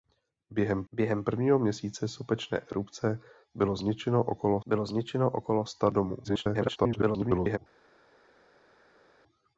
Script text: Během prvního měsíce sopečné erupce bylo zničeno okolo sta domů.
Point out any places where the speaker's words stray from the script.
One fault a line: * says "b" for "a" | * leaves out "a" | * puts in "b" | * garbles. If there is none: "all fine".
* puts in "během"
* puts in "bylo zničeno okolo"
* garbles